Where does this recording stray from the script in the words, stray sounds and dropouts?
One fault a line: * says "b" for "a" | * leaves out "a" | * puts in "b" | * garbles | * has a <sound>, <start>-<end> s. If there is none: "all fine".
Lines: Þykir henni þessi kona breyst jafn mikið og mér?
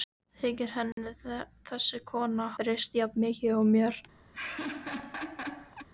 * has a dropout, 0.9-1.0 s
* has a laugh, 4.3-5.9 s